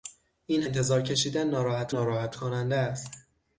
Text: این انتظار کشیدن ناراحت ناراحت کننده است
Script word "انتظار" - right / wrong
right